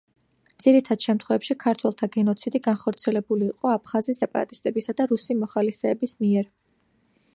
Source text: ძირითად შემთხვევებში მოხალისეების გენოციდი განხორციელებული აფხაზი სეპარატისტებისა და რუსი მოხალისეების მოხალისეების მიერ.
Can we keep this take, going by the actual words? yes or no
no